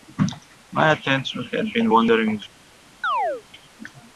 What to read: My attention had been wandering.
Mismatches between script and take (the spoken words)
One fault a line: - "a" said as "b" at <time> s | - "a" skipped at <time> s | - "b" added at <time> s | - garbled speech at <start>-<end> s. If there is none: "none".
none